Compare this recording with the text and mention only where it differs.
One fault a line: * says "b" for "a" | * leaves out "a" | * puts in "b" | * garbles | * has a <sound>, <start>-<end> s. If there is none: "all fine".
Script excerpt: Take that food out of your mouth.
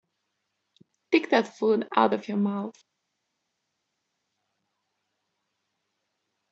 all fine